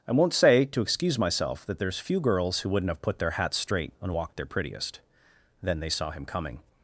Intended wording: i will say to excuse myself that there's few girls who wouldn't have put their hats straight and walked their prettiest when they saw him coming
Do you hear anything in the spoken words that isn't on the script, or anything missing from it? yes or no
yes